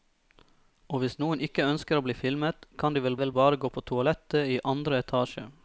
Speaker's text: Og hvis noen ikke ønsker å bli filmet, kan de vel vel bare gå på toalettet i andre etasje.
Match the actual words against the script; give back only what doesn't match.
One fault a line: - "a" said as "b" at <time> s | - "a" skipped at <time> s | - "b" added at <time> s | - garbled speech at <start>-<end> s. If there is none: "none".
none